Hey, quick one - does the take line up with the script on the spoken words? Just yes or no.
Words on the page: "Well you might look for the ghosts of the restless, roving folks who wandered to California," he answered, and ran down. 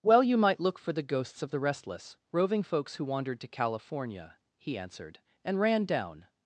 yes